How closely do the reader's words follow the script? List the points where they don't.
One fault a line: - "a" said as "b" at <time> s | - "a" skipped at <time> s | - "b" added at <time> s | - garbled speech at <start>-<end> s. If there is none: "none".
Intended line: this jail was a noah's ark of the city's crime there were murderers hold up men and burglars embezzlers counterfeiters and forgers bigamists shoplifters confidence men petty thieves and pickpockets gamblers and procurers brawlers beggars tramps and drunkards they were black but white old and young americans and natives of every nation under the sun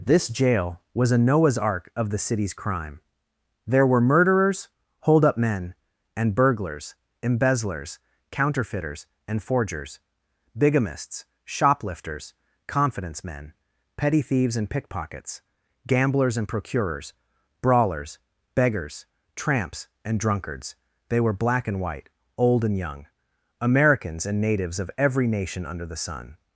- "but" said as "and" at 21.7 s